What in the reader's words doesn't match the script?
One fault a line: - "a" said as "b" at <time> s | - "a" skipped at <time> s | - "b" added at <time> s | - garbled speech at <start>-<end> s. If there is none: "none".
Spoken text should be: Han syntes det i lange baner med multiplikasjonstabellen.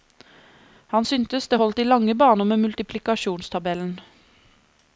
- "holdt" added at 1.6 s